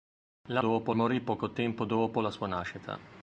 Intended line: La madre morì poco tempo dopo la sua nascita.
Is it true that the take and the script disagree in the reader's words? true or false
true